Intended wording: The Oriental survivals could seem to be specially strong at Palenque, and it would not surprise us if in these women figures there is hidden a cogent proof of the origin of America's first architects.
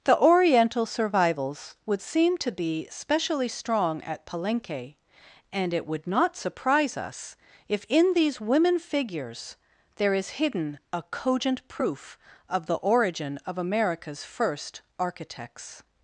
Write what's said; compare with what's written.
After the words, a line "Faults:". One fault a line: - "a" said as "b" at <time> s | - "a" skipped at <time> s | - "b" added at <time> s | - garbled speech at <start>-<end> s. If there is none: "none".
The Oriental survivals would seem to be specially strong at Palenque, and it would not surprise us if in these women figures there is hidden a cogent proof of the origin of America's first architects.
Faults:
- "could" said as "would" at 1.9 s